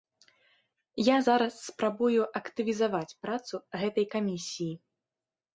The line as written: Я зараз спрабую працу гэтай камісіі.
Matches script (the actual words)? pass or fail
fail